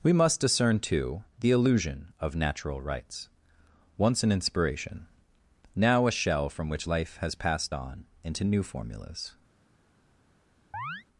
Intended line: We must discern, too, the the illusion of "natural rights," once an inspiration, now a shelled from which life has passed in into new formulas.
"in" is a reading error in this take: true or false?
true